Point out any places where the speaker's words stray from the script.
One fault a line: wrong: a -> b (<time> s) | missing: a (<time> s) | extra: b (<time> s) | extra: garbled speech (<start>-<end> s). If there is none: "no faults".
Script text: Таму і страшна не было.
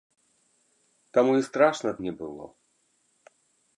no faults